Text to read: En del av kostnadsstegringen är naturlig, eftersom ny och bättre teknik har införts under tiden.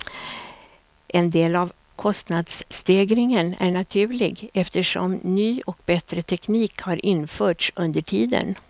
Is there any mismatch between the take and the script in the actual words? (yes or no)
no